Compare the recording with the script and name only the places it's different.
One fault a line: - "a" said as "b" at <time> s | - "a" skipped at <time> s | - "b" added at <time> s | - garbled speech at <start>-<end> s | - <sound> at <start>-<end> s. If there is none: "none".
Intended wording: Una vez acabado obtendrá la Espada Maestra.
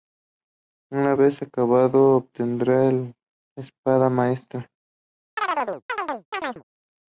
- chirp at 5.4-6.6 s